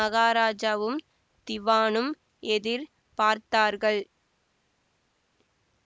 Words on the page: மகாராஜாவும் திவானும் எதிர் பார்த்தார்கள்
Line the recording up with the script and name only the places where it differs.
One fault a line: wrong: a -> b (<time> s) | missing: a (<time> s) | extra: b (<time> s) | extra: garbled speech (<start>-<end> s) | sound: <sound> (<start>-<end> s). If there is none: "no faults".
no faults